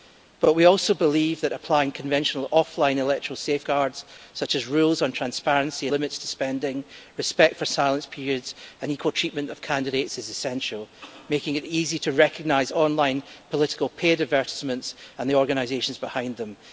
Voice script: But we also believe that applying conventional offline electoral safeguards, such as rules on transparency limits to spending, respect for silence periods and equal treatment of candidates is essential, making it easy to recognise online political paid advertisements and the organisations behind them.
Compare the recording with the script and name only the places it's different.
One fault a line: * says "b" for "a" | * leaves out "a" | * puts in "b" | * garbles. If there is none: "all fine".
all fine